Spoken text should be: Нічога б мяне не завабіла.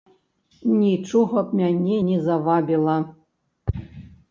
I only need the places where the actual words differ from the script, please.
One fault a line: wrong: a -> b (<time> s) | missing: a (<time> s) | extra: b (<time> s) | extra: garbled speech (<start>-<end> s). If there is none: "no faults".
no faults